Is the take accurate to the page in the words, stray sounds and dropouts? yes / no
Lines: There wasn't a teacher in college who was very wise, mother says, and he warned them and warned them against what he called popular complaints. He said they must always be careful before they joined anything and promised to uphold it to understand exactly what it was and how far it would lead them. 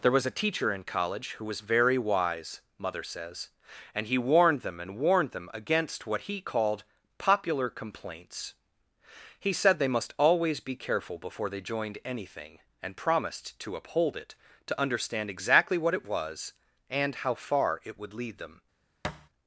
no